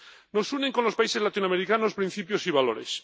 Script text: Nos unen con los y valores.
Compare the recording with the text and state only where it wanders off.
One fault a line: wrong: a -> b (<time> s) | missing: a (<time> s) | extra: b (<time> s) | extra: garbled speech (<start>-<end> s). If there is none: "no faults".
extra: países latinoamericanos principios (0.9 s)